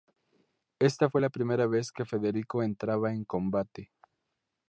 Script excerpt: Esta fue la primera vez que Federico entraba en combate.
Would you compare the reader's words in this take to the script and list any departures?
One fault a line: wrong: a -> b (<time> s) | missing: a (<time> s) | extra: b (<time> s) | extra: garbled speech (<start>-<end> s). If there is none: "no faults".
no faults